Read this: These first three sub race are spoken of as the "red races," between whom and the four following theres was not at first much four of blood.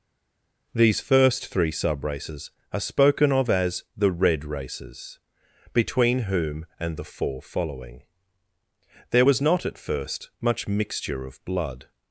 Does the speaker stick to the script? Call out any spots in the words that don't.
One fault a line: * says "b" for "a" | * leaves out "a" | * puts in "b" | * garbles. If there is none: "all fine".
* says "races" for "race"
* says "there" for "theres"
* says "mixture" for "four"